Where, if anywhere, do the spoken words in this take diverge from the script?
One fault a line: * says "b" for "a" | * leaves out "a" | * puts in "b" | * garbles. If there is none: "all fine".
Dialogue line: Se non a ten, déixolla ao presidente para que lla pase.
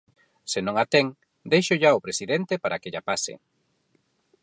all fine